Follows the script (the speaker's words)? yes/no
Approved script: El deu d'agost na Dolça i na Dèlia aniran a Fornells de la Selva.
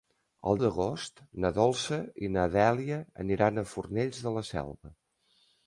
no